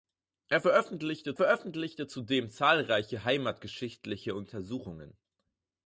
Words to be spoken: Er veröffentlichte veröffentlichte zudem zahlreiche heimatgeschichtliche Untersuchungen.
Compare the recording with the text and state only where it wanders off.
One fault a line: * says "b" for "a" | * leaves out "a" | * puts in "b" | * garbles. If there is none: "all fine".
all fine